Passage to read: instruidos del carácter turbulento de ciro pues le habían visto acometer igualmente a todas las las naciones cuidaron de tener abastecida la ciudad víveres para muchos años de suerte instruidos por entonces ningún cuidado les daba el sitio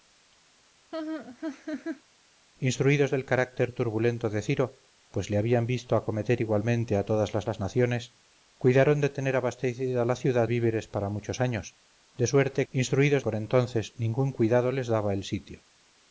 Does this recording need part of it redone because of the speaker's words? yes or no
no